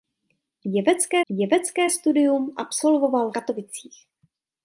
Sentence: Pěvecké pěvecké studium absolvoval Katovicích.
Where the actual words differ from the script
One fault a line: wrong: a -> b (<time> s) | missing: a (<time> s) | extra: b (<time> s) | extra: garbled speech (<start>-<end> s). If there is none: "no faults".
no faults